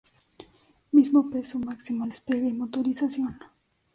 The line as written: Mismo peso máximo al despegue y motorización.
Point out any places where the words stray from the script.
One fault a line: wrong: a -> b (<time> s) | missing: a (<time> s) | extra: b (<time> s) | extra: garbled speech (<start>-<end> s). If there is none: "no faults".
no faults